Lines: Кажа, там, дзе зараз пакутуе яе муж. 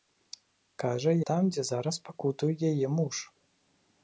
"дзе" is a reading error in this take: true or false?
false